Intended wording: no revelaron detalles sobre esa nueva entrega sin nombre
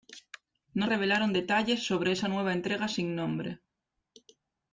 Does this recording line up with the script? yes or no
yes